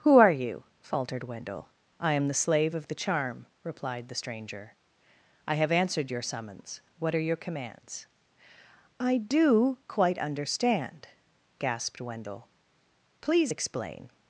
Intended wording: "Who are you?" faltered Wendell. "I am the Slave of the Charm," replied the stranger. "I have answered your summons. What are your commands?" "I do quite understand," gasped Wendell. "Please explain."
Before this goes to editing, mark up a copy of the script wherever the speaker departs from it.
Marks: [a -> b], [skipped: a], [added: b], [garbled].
"Who are you?" faltered Wendell. "I am the Slave of the Charm," replied the stranger. "I have answered your summons. What are your commands?" "I do quite understand," gasped Wendell. "Please explain."